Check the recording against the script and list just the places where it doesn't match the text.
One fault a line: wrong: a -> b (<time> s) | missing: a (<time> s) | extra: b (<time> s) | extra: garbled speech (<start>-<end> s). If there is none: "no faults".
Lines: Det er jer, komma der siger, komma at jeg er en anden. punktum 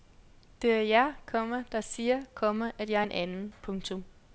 no faults